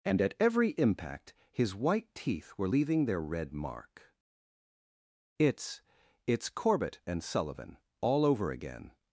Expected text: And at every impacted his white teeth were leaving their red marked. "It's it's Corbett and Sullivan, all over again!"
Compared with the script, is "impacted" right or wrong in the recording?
wrong